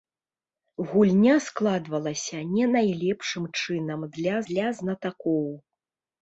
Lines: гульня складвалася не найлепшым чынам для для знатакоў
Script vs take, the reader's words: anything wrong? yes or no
no